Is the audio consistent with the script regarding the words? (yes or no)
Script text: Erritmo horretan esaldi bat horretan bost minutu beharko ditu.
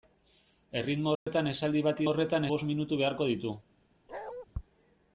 yes